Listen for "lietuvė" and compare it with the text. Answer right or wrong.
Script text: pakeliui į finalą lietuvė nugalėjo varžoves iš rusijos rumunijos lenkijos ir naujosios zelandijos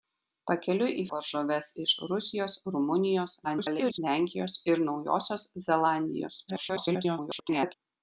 wrong